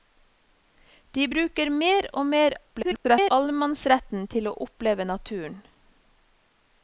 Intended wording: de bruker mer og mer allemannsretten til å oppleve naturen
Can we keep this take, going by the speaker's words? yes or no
no